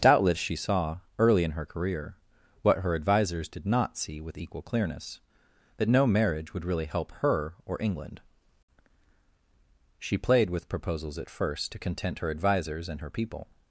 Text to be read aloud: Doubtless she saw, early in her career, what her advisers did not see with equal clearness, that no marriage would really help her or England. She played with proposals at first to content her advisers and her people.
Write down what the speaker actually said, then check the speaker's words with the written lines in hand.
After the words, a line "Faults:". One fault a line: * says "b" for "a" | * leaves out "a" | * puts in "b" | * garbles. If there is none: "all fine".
Doubtless she saw, early in her career, what her advisers did not see with equal clearness, that no marriage would really help her or England. She played with proposals at first to content her advisers and her people.
Faults:
all fine